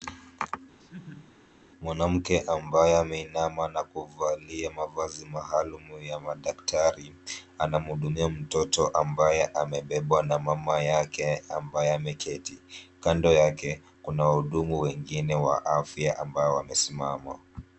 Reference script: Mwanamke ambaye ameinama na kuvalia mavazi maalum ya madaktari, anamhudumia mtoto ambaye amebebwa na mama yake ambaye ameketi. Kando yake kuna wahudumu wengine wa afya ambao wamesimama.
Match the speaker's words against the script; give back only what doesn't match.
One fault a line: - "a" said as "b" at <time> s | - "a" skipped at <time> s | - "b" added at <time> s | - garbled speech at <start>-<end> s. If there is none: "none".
none